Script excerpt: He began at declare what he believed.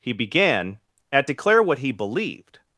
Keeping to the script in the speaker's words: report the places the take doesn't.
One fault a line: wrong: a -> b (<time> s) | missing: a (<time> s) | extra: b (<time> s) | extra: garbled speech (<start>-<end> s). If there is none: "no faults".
no faults